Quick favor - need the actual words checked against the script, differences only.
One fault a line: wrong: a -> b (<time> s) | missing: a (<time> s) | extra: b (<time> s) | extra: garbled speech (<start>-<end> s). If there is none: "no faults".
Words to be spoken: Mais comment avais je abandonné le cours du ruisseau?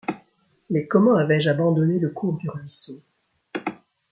no faults